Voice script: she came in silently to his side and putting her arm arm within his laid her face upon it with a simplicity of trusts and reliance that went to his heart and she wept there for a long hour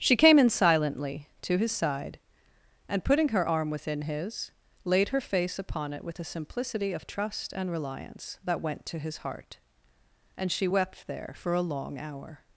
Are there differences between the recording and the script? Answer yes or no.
yes